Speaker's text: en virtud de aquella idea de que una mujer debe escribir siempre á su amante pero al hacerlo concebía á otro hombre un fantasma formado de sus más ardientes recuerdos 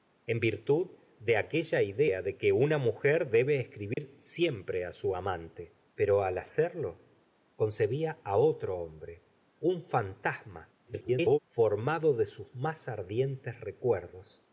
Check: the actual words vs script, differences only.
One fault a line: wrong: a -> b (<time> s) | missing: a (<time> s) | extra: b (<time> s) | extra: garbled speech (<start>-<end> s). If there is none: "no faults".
extra: garbled speech (10.9-11.4 s)